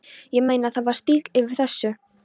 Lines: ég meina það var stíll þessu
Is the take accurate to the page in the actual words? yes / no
no